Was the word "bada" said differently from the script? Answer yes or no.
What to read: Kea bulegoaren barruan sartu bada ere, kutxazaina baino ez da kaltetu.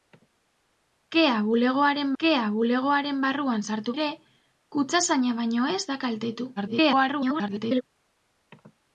yes